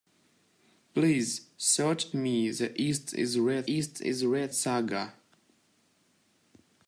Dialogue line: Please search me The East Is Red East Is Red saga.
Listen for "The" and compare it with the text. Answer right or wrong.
right